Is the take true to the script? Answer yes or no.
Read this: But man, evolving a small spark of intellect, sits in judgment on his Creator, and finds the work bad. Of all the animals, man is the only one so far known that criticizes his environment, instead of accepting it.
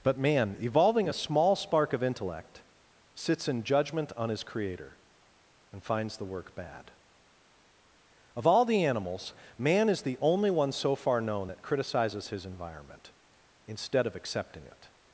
yes